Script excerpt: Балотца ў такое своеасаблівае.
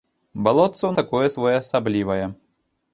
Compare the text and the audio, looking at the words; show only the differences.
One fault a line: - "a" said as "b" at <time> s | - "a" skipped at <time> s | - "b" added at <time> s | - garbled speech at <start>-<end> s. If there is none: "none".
none